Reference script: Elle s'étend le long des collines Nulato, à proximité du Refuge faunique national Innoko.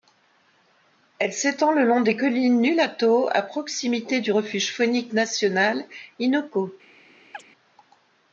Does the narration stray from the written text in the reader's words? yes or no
no